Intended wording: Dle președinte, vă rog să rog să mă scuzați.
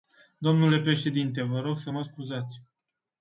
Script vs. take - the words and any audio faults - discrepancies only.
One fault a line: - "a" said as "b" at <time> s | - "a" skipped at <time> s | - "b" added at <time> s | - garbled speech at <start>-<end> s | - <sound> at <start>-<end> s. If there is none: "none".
- "rog să" skipped at 1.9 s